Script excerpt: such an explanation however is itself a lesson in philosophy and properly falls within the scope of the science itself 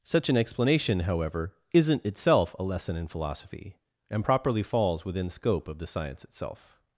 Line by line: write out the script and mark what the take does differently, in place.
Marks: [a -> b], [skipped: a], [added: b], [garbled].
such an explanation however [is -> isn't] itself a lesson in philosophy and properly falls within [skipped: the] scope of the science itself